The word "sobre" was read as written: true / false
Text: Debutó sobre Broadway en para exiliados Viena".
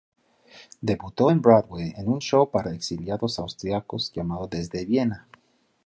false